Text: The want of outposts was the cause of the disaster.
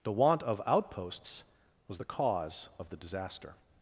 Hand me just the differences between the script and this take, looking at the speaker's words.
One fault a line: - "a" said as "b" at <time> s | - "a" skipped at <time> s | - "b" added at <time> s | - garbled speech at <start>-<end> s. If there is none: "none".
none